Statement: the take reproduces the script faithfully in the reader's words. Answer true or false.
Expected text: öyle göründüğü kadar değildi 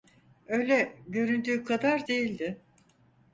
true